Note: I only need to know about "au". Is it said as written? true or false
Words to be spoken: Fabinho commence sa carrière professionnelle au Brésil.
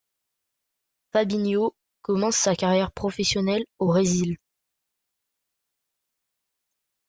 true